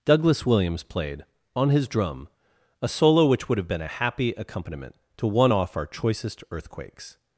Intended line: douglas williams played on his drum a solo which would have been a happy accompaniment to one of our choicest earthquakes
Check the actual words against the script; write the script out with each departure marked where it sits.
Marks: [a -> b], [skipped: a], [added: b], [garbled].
douglas williams played on his drum a solo which would have been a happy accompaniment to one [of -> off] our choicest earthquakes